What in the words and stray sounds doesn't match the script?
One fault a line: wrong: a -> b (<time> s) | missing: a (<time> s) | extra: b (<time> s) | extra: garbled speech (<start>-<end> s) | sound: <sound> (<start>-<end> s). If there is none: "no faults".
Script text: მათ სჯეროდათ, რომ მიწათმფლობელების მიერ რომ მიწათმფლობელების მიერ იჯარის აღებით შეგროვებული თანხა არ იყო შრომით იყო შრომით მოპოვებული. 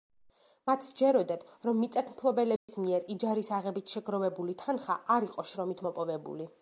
sound: dropout (2.6-2.7 s)
missing: რომ მიწათმფლობელების მიერ (3.0 s)
missing: იყო შრომით (5.8 s)